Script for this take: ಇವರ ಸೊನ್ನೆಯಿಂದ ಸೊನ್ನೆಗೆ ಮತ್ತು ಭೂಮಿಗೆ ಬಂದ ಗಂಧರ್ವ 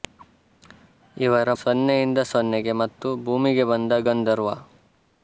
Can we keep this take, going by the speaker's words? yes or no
yes